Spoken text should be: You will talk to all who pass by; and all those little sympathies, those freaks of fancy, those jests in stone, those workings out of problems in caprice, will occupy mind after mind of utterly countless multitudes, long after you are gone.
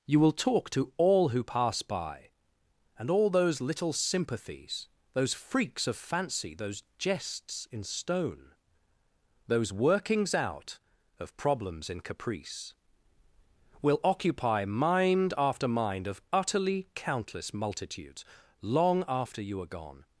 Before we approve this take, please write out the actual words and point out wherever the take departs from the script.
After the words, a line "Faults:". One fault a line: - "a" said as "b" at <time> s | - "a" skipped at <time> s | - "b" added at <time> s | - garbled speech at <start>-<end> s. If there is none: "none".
You will talk to all who pass by; and all those little sympathies, those freaks of fancy, those jests in stone, those workings out of problems in caprice, will occupy mind after mind of utterly countless multitudes, long after you are gone.
Faults:
none